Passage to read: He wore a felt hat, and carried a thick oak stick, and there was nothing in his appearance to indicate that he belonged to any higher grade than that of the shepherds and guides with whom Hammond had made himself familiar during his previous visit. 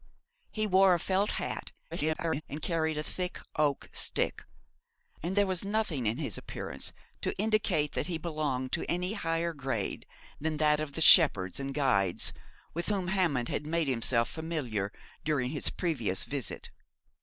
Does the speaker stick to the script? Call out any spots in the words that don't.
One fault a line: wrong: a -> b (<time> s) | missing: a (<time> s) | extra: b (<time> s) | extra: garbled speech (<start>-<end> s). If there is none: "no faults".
extra: garbled speech (1.9-2.4 s)